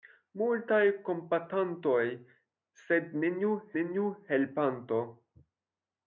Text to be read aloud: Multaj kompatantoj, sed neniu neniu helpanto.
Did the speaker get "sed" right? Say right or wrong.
right